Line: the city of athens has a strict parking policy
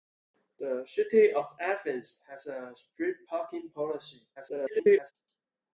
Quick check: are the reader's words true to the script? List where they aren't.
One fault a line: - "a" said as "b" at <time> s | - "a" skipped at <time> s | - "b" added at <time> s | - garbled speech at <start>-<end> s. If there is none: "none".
- garbled speech at 4.4-5.1 s